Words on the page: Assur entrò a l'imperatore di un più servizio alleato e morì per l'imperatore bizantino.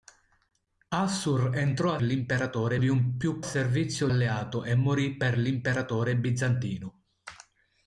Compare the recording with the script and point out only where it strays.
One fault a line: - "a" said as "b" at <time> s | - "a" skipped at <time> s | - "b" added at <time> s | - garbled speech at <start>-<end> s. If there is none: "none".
none